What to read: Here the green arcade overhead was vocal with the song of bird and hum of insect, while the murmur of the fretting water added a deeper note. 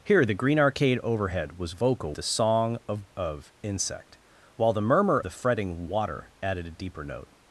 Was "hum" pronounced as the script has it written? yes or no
no